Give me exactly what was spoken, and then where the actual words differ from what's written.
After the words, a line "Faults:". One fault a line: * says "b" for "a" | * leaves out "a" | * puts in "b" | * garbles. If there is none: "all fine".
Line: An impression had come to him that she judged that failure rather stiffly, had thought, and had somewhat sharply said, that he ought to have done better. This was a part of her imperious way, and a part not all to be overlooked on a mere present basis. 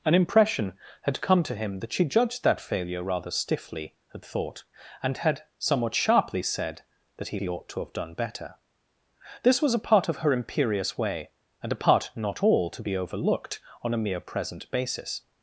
An impression had come to him that she judged that failure rather stiffly, had thought, and had somewhat sharply said, that he he ought to have done better. This was a part of her imperious way, and a part not all to be overlooked on a mere present basis.
Faults:
* puts in "he"